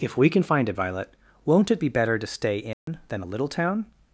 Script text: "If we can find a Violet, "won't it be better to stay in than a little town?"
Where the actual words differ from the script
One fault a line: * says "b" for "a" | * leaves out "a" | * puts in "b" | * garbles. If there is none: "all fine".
all fine